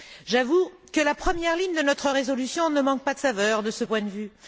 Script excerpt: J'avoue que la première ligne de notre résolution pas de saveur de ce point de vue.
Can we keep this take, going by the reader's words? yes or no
no